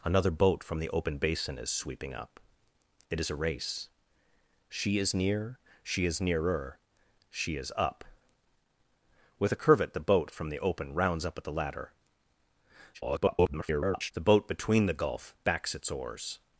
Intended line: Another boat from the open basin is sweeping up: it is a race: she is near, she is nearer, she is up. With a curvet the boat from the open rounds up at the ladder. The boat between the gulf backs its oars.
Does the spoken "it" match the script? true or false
true